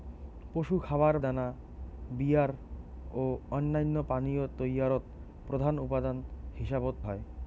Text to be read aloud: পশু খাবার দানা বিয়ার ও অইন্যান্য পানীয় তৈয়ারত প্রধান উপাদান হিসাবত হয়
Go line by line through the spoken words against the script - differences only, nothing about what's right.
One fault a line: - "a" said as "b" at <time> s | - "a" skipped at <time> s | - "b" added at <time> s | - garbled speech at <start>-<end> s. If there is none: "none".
none